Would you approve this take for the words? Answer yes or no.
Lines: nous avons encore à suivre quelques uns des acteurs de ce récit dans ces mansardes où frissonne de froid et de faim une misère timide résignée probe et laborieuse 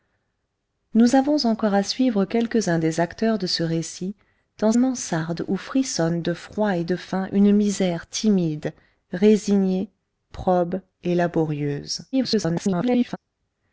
no